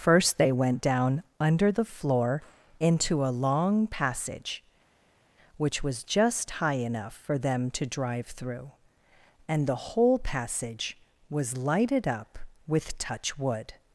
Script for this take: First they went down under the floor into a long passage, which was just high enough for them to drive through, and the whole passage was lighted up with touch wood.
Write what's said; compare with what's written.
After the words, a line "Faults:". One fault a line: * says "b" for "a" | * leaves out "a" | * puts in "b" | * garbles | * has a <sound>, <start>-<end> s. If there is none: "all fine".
First they went down under the floor into a long passage, which was just high enough for them to drive through, and the whole passage was lighted up with touch wood.
Faults:
all fine